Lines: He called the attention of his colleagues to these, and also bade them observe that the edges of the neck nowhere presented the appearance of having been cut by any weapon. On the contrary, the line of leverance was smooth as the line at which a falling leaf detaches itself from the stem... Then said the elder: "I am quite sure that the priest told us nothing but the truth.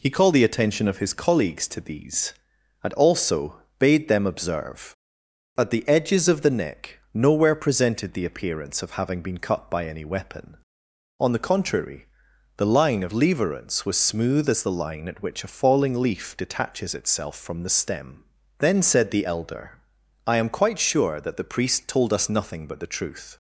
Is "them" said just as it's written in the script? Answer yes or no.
yes